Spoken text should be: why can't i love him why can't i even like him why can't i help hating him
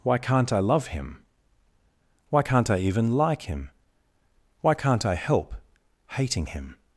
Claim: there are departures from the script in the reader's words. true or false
false